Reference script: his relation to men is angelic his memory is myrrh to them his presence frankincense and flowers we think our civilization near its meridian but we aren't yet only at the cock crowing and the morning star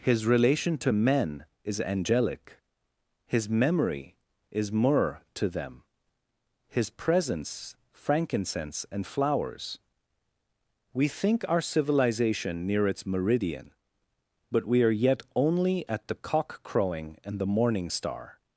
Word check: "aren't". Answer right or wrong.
wrong